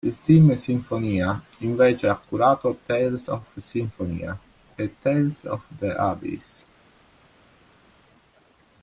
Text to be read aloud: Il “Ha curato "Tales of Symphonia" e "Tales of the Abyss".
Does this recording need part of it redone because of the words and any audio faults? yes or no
yes